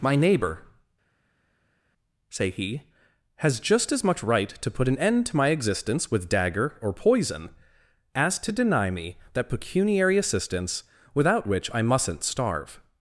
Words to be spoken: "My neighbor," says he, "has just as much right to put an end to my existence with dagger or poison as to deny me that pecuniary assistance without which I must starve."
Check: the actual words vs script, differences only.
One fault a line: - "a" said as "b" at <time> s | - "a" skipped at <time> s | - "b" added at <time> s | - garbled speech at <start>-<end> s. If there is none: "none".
- "says" said as "say" at 2.3 s
- "must" said as "mustn't" at 11.8 s